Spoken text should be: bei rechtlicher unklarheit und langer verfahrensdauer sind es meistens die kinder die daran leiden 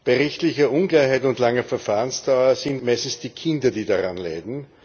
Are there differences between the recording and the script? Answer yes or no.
yes